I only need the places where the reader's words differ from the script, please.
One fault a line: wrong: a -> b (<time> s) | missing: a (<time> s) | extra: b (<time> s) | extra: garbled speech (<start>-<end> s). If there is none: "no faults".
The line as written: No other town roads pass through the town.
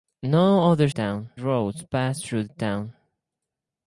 no faults